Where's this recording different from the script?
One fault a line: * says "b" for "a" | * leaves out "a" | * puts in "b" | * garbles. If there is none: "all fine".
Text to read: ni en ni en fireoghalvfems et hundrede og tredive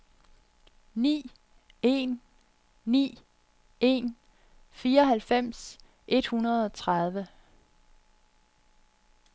all fine